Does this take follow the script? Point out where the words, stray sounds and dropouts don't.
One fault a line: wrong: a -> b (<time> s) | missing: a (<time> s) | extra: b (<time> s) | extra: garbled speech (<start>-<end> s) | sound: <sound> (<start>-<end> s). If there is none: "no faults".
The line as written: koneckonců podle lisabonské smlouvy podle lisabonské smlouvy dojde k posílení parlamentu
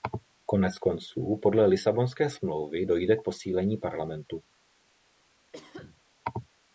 missing: podle lisabonské smlouvy (2.9 s)
sound: cough (5.5-6.0 s)